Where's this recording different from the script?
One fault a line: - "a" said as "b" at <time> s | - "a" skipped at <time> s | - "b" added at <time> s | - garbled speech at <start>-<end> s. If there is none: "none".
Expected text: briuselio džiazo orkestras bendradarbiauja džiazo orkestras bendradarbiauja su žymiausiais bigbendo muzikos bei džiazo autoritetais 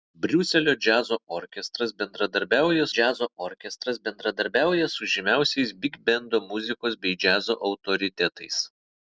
none